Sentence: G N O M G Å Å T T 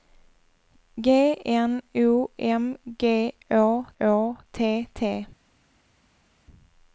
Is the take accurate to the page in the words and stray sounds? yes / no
yes